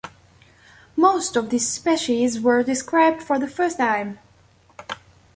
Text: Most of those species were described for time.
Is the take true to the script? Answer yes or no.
no